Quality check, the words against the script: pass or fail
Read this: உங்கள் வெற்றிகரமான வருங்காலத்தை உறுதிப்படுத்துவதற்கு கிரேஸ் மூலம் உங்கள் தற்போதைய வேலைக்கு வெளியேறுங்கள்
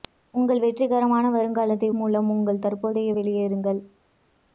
fail